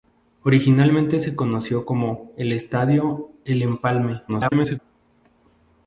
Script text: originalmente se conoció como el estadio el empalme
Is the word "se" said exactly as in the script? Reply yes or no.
yes